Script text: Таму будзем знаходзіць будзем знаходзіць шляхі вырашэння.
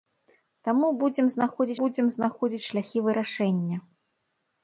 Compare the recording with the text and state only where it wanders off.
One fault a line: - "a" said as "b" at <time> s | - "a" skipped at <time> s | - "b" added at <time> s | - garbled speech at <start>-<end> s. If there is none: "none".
none